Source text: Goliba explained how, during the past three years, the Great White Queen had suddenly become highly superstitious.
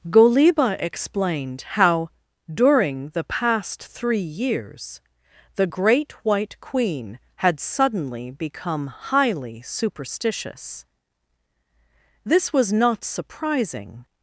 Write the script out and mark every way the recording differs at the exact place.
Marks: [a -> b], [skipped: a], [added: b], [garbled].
Goliba explained how, during the past three years, the Great White Queen had suddenly become highly superstitious. [added: This was not surprising]